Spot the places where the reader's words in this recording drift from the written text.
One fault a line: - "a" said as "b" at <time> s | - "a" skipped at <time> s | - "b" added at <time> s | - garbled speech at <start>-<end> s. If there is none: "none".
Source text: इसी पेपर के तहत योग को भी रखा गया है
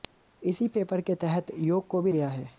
- "रखा" skipped at 2.1 s